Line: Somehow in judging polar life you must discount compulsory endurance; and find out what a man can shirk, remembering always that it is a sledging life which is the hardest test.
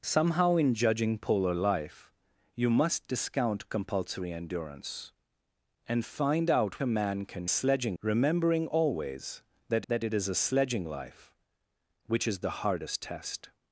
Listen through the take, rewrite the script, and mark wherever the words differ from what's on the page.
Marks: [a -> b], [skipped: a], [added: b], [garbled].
Somehow in judging polar life you must discount compulsory endurance; and find out [skipped: what] a man can [shirk, -> sledging] remembering always that [added: that] it is a sledging life which is the hardest test.